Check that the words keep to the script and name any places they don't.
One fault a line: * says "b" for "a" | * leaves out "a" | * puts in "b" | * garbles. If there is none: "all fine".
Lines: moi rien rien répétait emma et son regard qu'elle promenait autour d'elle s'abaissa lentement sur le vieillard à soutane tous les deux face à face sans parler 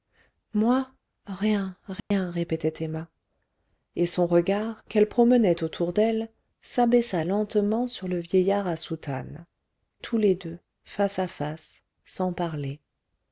all fine